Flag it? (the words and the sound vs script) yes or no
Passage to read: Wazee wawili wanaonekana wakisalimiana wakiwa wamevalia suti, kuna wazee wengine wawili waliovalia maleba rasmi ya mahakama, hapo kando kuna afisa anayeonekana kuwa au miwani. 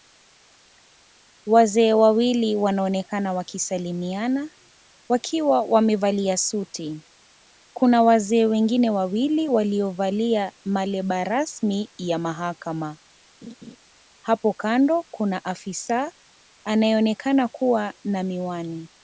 yes